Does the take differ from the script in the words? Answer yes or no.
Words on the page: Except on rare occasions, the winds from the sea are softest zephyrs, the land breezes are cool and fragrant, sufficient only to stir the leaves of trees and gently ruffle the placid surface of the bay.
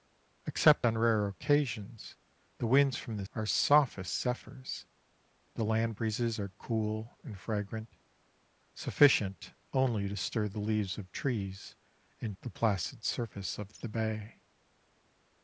yes